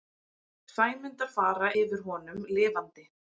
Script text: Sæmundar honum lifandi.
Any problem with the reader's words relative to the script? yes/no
yes